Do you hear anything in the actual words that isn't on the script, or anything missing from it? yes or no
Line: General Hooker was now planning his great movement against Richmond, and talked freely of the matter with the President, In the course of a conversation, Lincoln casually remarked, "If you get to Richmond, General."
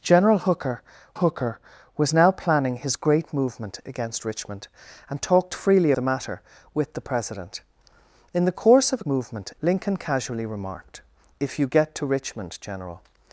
yes